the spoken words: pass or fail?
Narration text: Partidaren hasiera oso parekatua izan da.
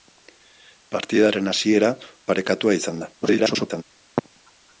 fail